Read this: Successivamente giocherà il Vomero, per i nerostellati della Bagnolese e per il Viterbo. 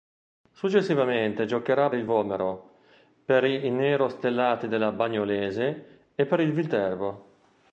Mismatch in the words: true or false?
false